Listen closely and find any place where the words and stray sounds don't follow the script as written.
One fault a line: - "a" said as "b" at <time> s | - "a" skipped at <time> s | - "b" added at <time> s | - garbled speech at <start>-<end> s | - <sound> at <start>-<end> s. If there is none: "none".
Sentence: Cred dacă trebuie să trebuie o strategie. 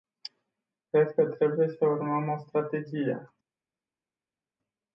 - "dacă" said as "că" at 1.1 s
- "trebuie" said as "urmăm" at 1.9 s